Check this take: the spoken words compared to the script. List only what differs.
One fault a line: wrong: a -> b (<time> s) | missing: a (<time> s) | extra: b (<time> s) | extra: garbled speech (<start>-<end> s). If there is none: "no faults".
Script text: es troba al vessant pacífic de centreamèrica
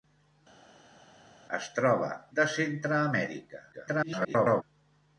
missing: al vessant pacífic (2.1 s)
extra: garbled speech (3.7-4.6 s)